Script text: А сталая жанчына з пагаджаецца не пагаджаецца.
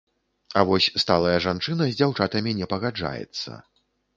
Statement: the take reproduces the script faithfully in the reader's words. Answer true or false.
false